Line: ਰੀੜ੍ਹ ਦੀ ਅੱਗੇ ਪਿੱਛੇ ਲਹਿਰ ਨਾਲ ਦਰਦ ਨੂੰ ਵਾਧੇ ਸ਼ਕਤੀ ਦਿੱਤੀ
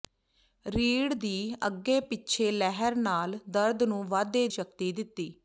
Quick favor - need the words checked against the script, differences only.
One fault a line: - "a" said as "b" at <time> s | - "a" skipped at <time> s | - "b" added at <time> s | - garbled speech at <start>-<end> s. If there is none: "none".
none